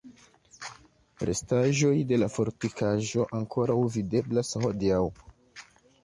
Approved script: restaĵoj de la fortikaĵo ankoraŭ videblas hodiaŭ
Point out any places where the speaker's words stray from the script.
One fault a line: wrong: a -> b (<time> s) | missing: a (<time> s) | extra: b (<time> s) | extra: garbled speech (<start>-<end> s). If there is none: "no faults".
no faults